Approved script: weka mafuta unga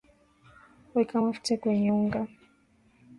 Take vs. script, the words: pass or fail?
fail